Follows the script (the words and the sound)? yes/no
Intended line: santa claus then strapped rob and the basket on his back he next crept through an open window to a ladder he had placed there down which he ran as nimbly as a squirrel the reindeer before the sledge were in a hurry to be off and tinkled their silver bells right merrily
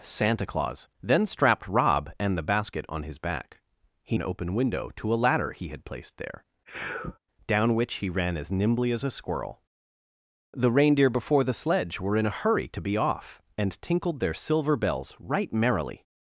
no